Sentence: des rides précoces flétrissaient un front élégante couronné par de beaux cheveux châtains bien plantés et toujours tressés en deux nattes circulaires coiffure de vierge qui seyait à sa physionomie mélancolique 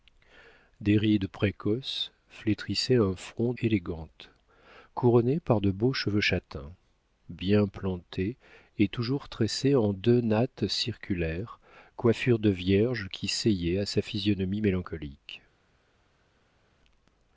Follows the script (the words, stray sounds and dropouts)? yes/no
yes